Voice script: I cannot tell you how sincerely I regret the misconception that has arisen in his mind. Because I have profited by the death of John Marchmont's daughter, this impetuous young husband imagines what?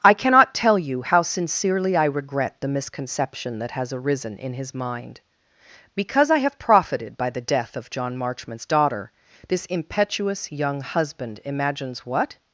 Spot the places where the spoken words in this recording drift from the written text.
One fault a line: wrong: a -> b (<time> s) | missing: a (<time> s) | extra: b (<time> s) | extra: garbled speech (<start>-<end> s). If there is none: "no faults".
no faults